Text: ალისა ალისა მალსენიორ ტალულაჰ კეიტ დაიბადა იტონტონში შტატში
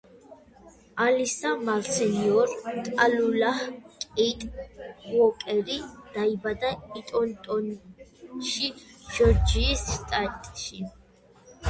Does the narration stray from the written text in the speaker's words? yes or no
yes